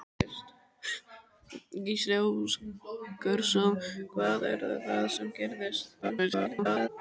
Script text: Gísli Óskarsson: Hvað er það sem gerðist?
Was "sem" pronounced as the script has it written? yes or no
yes